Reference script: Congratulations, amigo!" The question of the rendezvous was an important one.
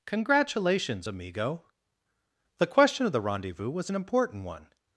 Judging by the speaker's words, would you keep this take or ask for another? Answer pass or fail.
pass